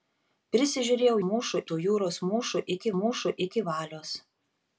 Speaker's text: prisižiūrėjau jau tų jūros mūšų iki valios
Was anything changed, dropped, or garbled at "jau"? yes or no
yes